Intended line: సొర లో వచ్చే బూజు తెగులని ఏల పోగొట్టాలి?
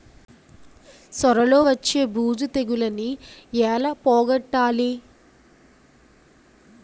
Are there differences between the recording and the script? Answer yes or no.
no